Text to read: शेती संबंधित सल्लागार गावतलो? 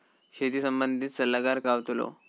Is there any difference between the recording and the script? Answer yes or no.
no